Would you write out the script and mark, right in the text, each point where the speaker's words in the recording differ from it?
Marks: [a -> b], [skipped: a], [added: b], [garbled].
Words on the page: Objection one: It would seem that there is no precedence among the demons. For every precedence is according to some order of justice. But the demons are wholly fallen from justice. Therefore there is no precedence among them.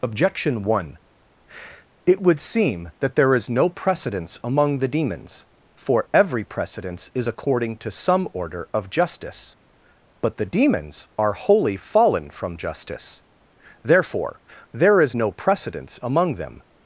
Objection one: It would seem that there is no precedence among the demons. For every precedence is according to some order of justice. But the demons are wholly fallen from justice. Therefore there is no precedence among them.